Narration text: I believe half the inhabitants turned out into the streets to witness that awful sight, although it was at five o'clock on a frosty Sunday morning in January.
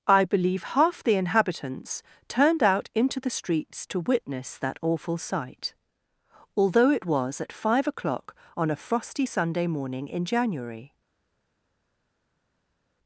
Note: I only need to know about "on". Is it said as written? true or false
true